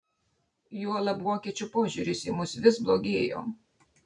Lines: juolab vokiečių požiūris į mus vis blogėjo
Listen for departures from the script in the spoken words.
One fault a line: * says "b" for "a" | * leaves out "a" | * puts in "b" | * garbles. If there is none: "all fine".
all fine